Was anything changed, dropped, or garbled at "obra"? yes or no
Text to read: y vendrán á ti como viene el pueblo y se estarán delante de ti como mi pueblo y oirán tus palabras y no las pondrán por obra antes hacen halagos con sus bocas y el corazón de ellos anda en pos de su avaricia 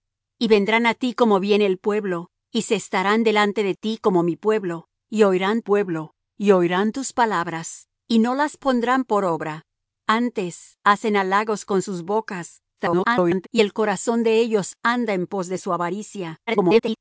no